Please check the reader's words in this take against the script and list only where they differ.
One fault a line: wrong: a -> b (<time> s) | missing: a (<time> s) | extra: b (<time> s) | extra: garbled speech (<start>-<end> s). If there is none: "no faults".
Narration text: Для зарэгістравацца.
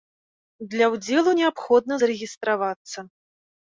extra: ўдзелу неабходна (0.9 s)